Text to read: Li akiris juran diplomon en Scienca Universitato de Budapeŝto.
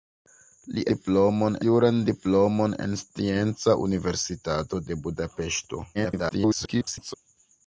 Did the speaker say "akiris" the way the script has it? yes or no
no